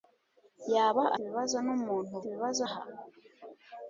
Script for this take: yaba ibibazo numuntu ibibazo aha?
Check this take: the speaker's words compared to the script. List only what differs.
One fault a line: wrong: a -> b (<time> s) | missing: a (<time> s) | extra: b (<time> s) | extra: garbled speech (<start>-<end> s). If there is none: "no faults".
no faults